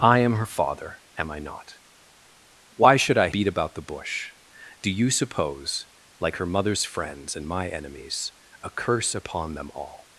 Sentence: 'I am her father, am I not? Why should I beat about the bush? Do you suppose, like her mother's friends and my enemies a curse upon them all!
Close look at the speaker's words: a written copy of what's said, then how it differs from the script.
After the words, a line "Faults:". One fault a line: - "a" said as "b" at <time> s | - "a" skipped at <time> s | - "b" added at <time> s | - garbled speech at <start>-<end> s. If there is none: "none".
'I am her father, am I not? Why should I beat about the bush? Do you suppose, like her mother's friends and my enemies a curse upon them all!
Faults:
none